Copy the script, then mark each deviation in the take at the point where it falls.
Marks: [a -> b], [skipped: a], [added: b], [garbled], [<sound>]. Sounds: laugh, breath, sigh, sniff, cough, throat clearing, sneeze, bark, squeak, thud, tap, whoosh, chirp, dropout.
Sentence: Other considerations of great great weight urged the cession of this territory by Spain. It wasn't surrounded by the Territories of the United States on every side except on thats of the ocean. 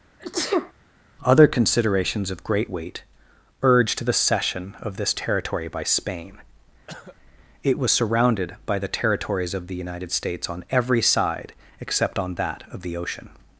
[sneeze] Other considerations of great [skipped: great] weight urged the cession of this territory by Spain. [cough] It [wasn't -> was] surrounded by the Territories of the United States on every side except on [thats -> that] of the ocean.